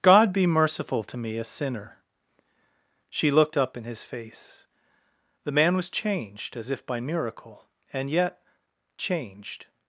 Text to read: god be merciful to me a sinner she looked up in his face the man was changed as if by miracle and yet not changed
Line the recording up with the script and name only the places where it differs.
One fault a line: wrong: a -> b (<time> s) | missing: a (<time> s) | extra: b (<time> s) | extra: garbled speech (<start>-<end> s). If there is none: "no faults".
missing: not (8.4 s)